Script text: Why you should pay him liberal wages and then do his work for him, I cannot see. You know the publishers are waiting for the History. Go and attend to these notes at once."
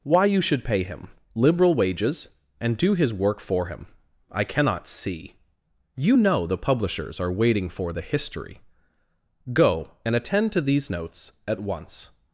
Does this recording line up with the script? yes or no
no